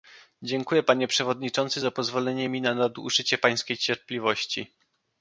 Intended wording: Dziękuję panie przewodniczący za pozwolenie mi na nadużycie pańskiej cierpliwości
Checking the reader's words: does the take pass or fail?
pass